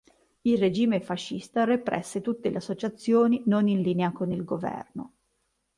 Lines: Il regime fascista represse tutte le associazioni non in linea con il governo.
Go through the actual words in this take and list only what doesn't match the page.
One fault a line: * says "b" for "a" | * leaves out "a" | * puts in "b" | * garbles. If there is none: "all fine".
all fine